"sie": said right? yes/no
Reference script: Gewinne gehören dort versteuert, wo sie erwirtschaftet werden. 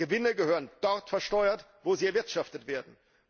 yes